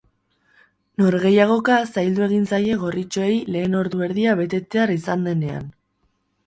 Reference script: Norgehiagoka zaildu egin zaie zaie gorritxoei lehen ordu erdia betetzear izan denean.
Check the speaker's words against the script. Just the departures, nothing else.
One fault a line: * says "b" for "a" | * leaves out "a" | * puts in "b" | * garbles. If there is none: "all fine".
* leaves out "zaie"